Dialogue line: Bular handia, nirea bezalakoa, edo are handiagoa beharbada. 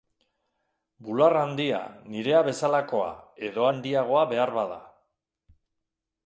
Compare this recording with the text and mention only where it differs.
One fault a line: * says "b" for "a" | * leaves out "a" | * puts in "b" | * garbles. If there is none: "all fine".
* leaves out "are"